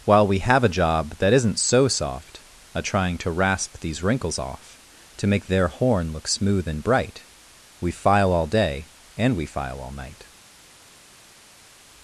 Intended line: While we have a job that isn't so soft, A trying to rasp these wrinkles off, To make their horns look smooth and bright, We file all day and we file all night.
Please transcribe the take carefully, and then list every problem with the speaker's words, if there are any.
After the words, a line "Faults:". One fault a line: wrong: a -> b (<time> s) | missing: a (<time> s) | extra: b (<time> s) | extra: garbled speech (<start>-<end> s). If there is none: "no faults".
While we have a job that isn't so soft, A trying to rasp these wrinkles off, To make their horn look smooth and bright, We file all day and we file all night.
Faults:
wrong: horns -> horn (5.7 s)